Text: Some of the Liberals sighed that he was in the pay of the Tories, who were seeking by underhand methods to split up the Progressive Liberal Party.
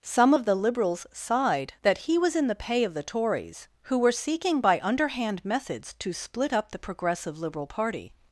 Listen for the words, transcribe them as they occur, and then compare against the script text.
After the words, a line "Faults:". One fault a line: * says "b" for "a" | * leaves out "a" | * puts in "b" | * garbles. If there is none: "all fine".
Some of the Liberals sighed that he was in the pay of the Tories, who were seeking by underhand methods to split up the Progressive Liberal Party.
Faults:
all fine